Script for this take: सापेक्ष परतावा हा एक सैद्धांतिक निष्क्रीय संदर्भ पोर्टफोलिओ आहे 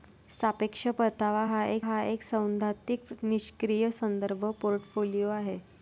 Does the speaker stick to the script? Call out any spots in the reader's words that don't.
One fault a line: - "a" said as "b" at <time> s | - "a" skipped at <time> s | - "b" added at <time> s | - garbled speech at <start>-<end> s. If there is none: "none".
- "हा एक" added at 1.8 s